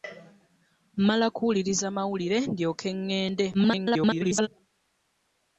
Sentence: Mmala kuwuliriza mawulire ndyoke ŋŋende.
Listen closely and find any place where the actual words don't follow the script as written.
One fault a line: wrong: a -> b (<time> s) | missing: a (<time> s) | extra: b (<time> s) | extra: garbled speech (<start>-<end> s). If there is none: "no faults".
extra: garbled speech (3.5-4.5 s)